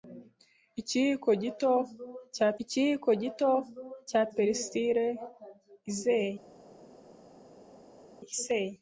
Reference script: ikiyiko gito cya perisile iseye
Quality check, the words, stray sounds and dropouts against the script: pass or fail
fail